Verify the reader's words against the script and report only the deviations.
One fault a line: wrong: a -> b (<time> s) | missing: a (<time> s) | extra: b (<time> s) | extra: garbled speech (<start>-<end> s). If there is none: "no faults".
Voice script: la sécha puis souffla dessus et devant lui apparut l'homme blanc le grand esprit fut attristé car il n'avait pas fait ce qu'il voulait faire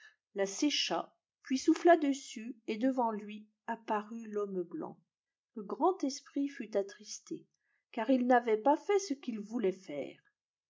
no faults